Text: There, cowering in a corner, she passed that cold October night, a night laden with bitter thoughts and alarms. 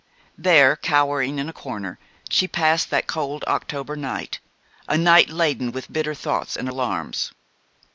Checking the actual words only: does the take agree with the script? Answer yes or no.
yes